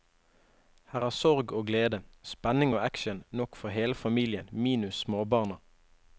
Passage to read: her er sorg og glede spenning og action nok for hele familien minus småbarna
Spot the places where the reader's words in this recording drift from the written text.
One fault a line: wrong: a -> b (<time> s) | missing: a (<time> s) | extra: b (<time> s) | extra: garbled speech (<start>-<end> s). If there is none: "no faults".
no faults